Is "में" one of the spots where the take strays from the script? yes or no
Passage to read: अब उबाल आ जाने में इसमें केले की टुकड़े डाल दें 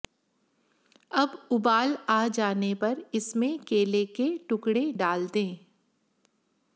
yes